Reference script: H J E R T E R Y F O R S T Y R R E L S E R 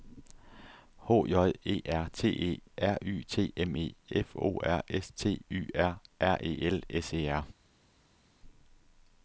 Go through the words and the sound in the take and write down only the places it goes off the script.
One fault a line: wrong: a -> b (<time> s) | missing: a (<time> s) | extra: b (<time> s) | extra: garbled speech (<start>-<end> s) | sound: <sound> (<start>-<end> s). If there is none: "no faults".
extra: T M E (3.3 s)